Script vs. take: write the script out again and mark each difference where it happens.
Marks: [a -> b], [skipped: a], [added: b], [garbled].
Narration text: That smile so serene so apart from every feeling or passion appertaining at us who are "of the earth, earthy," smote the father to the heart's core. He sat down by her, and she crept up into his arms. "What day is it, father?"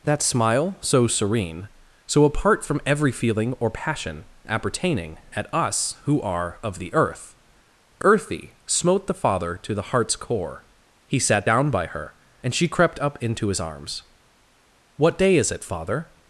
That smile so serene so apart from every feeling or passion appertaining at us who are "of the earth, earthy," smote the father to the heart's core. He sat down by her, and she crept up into his arms. "What day is it, father?"